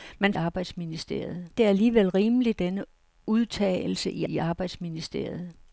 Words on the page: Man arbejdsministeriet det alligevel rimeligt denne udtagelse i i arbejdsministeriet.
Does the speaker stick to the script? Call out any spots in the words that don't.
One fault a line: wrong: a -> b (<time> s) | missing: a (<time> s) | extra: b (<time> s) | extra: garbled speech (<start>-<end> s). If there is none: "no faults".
no faults